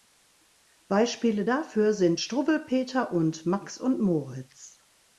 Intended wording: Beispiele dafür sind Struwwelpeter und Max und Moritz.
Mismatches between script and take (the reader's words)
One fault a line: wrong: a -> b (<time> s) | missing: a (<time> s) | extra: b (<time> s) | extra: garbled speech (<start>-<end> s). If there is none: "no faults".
no faults